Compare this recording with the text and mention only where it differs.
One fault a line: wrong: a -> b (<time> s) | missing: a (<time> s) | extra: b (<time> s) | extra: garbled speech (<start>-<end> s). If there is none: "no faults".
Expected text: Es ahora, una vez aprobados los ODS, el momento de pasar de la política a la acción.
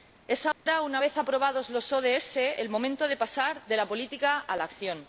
no faults